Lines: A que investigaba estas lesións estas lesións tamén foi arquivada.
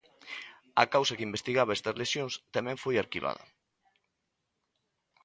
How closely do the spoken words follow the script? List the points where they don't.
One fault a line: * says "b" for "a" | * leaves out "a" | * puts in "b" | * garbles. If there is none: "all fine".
* puts in "causa"
* leaves out "estas lesións"